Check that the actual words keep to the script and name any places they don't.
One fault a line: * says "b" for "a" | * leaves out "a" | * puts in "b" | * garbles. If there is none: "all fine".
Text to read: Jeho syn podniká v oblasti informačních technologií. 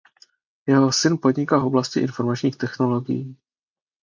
all fine